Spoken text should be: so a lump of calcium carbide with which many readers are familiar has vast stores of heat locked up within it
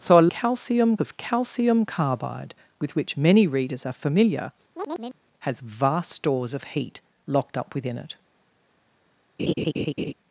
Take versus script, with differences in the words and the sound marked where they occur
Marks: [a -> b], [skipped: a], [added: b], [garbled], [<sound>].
so a [lump -> calcium] of calcium carbide with which many readers are familiar [chirp] has vast stores of heat locked up within it [laugh]